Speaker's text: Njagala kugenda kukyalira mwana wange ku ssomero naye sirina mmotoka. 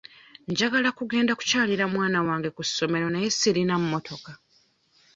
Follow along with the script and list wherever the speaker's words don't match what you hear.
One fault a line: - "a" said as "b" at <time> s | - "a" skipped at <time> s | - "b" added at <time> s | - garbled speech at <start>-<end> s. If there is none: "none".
none